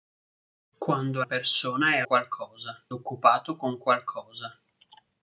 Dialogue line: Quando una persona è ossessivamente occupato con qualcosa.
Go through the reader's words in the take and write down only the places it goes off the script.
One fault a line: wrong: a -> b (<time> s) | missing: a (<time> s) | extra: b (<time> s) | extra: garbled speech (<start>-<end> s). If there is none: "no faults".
missing: una (1.2 s)
wrong: ossessivamente -> qualcosa (2.0 s)